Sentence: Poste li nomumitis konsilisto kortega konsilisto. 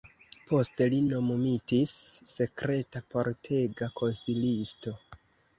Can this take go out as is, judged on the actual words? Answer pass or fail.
fail